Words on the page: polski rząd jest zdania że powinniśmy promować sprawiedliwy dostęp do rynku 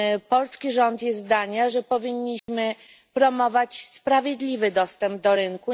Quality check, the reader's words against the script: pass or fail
pass